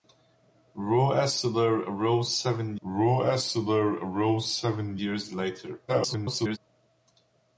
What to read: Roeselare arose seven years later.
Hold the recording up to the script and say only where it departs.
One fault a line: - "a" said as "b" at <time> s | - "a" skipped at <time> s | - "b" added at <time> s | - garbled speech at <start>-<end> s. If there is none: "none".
- "roeselare arose seven" added at 2.8 s
- garbled speech at 5.9-6.6 s